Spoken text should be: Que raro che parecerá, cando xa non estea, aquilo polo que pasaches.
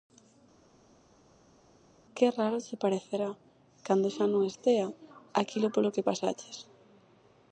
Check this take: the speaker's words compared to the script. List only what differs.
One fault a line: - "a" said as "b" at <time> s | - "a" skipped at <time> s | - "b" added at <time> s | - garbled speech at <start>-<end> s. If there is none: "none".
none